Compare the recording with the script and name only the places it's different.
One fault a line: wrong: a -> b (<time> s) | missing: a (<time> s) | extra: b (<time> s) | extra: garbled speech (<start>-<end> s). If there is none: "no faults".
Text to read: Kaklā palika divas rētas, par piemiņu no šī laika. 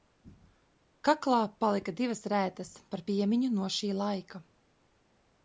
no faults